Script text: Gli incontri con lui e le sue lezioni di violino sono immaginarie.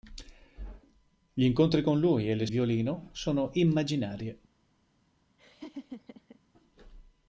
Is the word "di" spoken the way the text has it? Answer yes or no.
no